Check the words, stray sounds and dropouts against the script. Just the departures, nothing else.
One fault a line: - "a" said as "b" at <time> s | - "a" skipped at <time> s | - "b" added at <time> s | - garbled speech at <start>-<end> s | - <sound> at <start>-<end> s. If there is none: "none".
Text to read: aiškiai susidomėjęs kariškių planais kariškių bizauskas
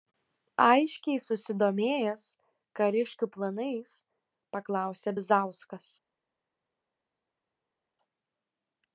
- "kariškių" said as "paklausė" at 4.6 s